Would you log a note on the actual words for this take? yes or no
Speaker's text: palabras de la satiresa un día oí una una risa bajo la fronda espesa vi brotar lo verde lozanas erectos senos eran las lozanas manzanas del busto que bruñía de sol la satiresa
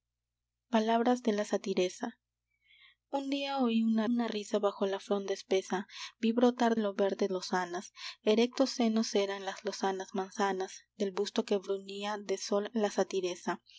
no